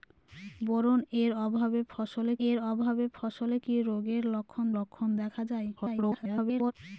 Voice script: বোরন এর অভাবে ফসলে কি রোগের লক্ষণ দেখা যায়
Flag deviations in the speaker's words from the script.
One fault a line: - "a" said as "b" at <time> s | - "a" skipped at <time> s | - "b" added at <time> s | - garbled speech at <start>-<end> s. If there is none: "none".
- "এর অভাবে ফসলে" added at 2.5 s
- "লক্ষণ" added at 4.8 s
- garbled speech at 5.8-6.7 s